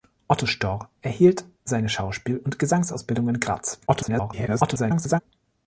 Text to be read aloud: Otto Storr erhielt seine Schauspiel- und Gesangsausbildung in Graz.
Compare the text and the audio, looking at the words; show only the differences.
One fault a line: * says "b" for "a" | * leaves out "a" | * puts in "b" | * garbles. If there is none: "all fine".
* garbles